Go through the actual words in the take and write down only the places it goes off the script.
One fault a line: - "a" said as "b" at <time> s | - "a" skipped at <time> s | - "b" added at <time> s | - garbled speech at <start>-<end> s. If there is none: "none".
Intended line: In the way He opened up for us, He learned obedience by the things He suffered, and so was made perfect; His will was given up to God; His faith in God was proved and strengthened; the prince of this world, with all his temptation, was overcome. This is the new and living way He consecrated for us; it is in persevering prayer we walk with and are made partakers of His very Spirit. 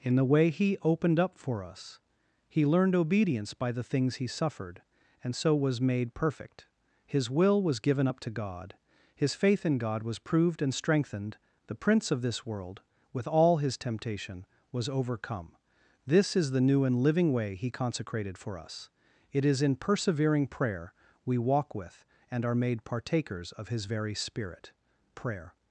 - "Prayer" added at 25.1 s